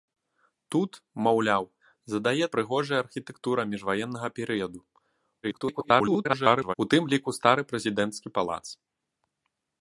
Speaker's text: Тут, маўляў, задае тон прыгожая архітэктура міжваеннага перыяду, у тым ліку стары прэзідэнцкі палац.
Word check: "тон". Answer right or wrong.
wrong